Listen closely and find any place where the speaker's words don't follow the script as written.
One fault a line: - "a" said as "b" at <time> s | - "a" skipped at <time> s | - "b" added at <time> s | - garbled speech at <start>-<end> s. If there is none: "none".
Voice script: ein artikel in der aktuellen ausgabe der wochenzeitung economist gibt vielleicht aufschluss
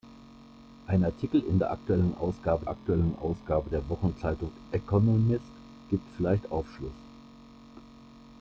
- "aktuellen ausgabe" added at 2.7 s